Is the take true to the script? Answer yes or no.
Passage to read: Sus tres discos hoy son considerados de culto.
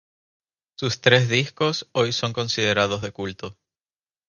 yes